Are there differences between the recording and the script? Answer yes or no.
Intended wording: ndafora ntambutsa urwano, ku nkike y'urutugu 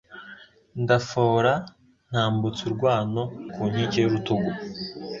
no